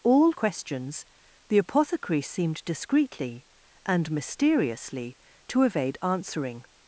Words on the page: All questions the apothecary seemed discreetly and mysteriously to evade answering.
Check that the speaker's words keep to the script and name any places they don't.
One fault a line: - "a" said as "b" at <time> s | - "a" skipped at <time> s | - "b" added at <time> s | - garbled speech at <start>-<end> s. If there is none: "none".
none